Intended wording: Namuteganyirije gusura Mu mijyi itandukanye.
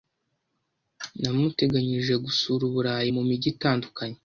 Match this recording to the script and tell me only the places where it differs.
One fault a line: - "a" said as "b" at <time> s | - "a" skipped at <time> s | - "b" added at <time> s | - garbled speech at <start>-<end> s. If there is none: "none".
- "Uburayi" added at 2.7 s